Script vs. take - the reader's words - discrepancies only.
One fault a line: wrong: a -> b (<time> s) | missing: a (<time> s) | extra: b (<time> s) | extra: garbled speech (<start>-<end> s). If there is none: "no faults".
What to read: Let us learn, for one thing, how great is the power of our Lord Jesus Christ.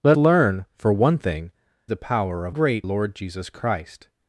missing: us (0.2 s)
missing: how great is (1.5 s)
wrong: our -> great (2.5 s)